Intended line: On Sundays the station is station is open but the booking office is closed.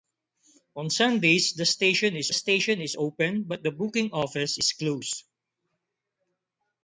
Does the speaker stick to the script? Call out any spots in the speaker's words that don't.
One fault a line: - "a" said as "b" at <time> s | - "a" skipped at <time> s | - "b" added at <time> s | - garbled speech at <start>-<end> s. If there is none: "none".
none